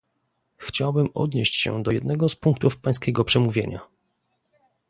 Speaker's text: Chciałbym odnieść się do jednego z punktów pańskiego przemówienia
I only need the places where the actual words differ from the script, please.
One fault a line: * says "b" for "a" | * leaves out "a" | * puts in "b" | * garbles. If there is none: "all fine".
all fine